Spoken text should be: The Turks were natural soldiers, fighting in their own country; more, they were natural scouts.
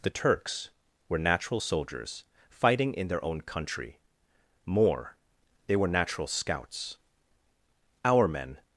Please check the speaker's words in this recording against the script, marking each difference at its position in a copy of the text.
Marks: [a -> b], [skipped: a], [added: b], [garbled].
The Turks were natural soldiers, fighting in their own country; more, they were natural scouts. [added: Our men]